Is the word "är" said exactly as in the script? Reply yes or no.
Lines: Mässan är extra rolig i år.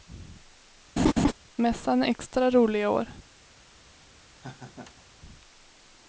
yes